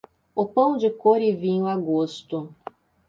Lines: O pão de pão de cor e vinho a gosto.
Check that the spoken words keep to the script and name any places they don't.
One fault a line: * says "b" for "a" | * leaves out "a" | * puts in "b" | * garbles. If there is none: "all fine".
* leaves out "pão de"